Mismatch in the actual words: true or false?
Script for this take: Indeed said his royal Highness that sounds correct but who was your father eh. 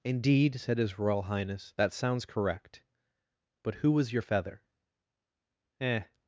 true